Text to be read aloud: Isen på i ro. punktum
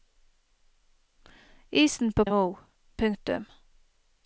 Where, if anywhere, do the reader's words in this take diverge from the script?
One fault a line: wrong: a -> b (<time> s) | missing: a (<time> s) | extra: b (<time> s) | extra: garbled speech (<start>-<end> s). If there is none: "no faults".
no faults